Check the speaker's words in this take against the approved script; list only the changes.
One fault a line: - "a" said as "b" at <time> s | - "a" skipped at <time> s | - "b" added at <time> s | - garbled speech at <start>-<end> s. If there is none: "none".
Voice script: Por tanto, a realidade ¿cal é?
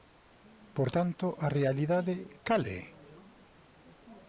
none